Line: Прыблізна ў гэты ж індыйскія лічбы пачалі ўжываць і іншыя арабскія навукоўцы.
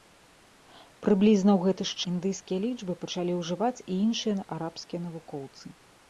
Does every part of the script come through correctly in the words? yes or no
yes